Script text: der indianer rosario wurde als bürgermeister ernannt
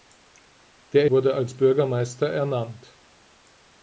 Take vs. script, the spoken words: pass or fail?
fail